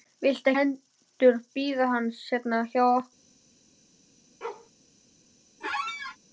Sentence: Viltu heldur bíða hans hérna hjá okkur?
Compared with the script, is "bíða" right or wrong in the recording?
right